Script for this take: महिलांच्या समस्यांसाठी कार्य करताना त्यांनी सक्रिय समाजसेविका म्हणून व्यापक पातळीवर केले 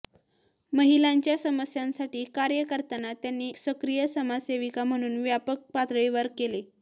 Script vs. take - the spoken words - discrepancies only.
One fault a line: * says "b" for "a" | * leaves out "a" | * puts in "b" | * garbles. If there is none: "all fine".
all fine